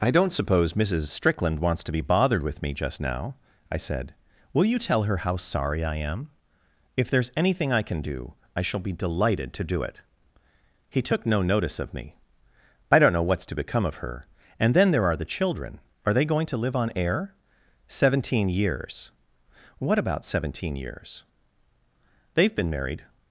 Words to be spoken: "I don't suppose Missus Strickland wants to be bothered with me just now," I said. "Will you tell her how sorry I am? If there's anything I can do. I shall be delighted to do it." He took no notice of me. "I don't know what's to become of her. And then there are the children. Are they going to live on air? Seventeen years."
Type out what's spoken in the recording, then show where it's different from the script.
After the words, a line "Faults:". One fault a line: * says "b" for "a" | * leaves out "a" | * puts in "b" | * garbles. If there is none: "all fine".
"I don't suppose Missus Strickland wants to be bothered with me just now," I said. "Will you tell her how sorry I am? If there's anything I can do. I shall be delighted to do it." He took no notice of me. "I don't know what's to become of her. And then there are the children. Are they going to live on air? Seventeen years." "What about seventeen years?" "They've been married
Faults:
* puts in "What about seventeen years They've been married"